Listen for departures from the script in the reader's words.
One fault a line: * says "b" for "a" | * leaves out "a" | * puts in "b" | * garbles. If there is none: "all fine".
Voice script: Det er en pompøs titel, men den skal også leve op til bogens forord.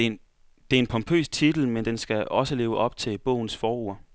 all fine